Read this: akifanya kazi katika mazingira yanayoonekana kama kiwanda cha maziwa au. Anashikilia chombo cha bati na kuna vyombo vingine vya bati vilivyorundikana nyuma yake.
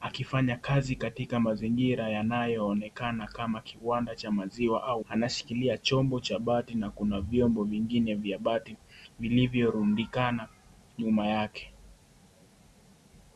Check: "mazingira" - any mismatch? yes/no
no